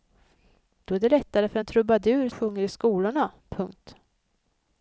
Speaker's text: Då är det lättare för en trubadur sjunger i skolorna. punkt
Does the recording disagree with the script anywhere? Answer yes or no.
no